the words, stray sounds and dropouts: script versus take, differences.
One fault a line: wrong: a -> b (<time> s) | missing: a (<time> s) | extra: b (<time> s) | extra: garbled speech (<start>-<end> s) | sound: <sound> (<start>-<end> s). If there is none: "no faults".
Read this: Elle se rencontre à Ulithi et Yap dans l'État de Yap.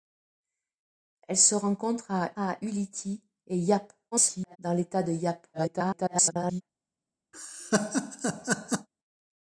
extra: à (2.4 s)
extra: garbled speech (4.1-4.6 s)
extra: garbled speech (5.5-6.6 s)
sound: laugh (7.3-8.9 s)